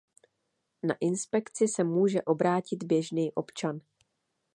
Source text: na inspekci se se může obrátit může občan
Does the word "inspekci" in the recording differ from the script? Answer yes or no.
no